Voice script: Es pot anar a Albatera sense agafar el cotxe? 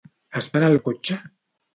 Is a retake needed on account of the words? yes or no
yes